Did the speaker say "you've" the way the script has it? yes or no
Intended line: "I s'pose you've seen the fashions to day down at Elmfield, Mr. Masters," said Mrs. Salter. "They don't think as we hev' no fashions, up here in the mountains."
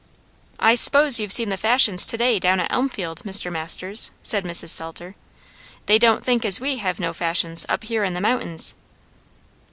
yes